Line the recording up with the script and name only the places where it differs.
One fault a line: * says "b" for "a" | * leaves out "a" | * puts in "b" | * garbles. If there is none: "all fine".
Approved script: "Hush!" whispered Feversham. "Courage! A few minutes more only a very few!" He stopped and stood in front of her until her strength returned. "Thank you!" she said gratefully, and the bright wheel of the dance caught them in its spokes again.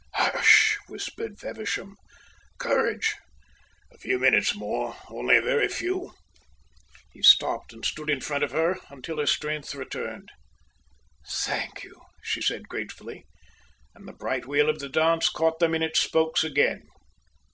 all fine